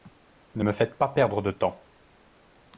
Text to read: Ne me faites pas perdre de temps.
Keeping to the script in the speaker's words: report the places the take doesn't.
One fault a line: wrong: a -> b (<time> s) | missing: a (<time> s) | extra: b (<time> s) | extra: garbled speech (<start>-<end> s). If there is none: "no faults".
no faults